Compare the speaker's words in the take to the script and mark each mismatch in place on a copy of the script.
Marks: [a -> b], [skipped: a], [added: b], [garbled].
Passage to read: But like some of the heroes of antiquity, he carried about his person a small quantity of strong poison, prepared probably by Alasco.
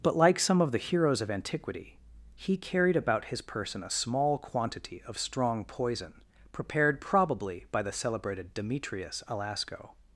But like some of the heroes of antiquity, he carried about his person a small quantity of strong poison, prepared probably by [added: the celebrated Demetrius] Alasco.